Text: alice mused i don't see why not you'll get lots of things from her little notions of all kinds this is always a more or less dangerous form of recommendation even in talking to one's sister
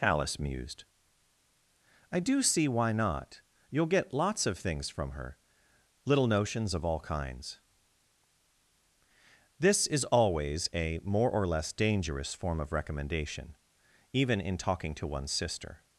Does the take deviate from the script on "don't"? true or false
true